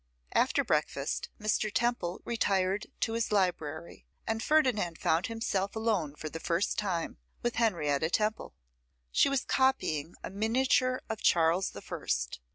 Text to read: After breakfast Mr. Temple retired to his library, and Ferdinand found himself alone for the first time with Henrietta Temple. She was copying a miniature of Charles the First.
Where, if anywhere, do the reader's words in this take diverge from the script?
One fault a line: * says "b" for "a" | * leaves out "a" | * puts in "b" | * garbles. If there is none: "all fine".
all fine